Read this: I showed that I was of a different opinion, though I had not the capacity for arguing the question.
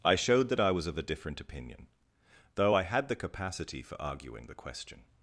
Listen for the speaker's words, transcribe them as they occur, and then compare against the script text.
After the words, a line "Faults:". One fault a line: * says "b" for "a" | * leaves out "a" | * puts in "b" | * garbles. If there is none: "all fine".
I showed that I was of a different opinion, though I had the capacity for arguing the question.
Faults:
* leaves out "not"